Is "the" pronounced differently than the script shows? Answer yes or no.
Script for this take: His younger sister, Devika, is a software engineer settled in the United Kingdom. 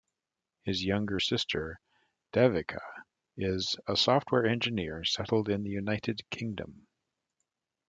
no